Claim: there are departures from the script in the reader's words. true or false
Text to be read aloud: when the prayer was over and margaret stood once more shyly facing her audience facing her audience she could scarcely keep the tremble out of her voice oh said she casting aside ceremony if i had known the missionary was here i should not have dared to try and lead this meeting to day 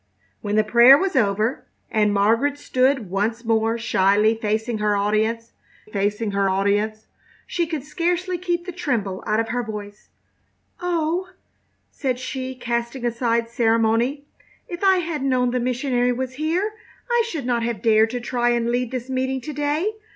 false